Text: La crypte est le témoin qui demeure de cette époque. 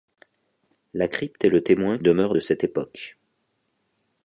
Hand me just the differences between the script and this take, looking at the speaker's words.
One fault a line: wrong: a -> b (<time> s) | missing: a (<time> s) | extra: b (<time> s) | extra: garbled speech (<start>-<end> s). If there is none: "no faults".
missing: qui (2.0 s)